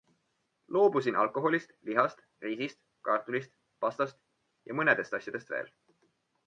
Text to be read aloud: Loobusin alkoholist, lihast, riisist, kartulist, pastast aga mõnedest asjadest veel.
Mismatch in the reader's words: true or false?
true